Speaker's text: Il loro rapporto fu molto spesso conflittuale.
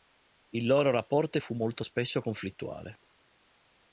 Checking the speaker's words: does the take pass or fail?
pass